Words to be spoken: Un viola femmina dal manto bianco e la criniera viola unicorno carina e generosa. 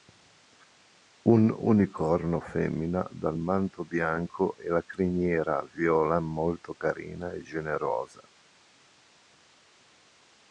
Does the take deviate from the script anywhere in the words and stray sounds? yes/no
yes